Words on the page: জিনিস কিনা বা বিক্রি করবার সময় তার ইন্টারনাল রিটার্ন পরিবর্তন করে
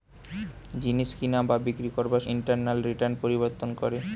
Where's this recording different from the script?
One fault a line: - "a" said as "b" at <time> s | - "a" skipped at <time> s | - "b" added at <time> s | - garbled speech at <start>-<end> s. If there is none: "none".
- "সময় তার" skipped at 2.2 s